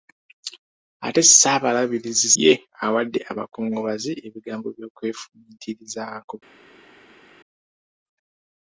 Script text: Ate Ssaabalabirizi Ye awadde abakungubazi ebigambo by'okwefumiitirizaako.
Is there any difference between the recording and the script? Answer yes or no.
no